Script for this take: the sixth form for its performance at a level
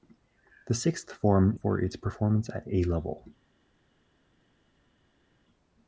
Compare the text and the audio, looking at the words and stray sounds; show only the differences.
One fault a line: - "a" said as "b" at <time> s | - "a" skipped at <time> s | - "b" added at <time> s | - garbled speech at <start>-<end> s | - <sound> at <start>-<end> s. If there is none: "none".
none